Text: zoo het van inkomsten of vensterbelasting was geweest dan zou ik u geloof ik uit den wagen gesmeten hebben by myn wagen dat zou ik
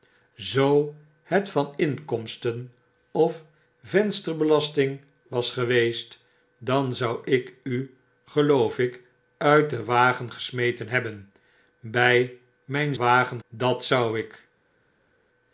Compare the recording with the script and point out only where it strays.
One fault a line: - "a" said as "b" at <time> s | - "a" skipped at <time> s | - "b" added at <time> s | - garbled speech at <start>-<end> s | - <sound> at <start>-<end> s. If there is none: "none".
none